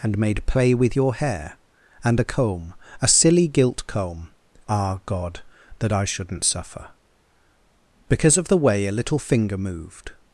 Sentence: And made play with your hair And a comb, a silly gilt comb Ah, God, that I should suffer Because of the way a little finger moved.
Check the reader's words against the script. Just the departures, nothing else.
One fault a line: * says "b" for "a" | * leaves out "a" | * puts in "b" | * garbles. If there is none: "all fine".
* says "shouldn't" for "should"